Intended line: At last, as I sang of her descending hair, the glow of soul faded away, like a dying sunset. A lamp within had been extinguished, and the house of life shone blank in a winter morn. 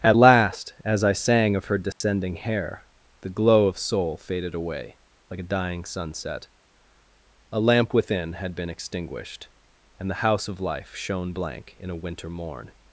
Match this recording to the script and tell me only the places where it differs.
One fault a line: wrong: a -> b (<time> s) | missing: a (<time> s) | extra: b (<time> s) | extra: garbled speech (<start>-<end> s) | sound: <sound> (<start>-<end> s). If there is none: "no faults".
sound: dropout (1.9-2.0 s)